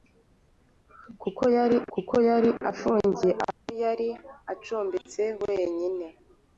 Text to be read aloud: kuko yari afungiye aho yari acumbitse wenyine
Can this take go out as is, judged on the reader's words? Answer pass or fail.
fail